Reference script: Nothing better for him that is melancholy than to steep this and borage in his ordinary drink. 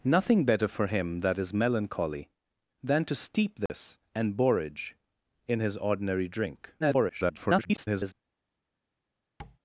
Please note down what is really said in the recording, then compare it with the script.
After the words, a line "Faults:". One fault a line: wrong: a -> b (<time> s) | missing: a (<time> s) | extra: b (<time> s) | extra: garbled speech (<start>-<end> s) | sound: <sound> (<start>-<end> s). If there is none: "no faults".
Nothing better for him that is melancholy than to steep this and borage in his ordinary drink. [garbled]
Faults:
sound: dropout (3.7-3.7 s)
extra: garbled speech (6.8-8.1 s)
sound: tap (9.4-9.6 s)